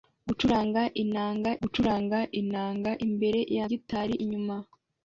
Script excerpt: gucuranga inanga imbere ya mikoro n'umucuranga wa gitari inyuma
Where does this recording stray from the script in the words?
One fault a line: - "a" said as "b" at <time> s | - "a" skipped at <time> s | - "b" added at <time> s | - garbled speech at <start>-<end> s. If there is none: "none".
- "gucuranga inanga" added at 1.6 s
- "mikoro n'umucuranga wa" skipped at 3.7 s